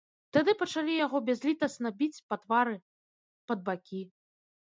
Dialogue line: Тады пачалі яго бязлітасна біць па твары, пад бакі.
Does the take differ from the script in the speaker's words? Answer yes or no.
no